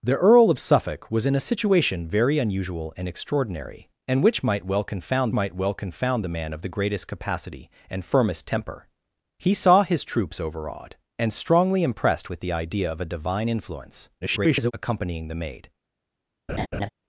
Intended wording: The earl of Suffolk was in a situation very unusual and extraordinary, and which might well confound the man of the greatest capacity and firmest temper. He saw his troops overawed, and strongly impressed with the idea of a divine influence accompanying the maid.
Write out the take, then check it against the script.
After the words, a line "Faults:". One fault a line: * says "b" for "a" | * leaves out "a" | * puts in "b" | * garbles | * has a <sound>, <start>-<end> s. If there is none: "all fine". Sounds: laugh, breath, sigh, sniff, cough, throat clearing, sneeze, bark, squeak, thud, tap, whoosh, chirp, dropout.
The earl of Suffolk was in a situation very unusual and extraordinary, and which might well confound might well confound the man of the greatest capacity and firmest temper. He saw his troops overawed, and strongly impressed with the idea of a divine influence [garbled] accompanying the maid.
Faults:
* puts in "might well confound"
* garbles
* has a laugh, 16.5-16.9 s